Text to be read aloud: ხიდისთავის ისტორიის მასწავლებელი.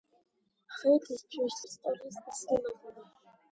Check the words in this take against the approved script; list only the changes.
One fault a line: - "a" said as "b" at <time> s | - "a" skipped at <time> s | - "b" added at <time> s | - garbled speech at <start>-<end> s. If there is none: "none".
none